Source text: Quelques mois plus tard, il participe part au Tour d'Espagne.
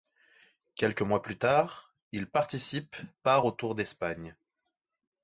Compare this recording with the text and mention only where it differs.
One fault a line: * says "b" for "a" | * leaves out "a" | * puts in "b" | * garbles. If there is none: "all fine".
all fine